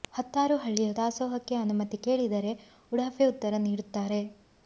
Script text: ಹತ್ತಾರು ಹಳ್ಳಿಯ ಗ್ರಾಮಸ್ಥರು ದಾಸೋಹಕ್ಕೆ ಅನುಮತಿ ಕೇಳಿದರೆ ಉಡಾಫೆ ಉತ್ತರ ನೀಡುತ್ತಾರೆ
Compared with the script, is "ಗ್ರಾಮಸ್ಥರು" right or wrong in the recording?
wrong